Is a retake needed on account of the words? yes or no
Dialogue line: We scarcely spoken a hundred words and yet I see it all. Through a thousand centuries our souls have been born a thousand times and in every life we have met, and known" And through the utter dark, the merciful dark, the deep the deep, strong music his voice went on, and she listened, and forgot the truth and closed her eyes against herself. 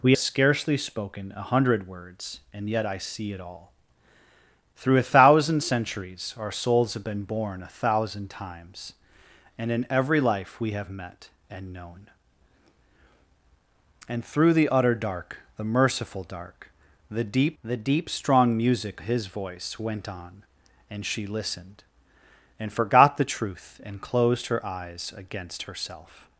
no